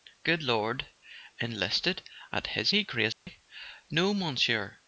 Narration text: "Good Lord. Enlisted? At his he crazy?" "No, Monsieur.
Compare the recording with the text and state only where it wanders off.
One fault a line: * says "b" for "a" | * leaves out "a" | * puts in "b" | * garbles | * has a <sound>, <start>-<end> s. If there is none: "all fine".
* has a dropout, 3.1-3.3 s